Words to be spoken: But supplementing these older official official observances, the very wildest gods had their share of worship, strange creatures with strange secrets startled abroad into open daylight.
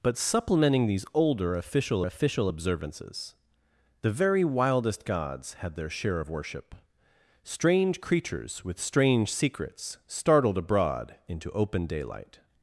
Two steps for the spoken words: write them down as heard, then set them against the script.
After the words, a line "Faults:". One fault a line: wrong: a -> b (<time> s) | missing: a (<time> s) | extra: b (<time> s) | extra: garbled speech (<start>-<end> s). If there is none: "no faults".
But supplementing these older official official observances, the very wildest gods had their share of worship, strange creatures with strange secrets startled abroad into open daylight.
Faults:
no faults